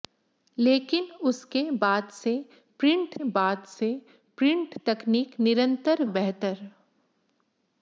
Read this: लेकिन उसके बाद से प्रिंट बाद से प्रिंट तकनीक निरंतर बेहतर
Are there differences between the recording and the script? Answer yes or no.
no